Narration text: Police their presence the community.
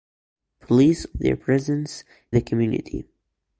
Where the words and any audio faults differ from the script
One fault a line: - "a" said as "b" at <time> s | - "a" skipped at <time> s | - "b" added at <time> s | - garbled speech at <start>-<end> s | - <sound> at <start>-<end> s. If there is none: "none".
none